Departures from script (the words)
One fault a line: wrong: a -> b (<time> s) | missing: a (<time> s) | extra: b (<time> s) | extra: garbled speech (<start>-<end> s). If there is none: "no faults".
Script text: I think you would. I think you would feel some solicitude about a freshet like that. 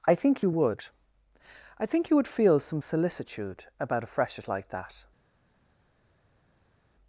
no faults